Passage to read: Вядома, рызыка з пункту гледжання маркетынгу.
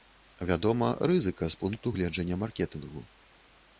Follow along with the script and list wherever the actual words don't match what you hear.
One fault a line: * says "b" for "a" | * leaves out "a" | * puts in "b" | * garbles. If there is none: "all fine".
all fine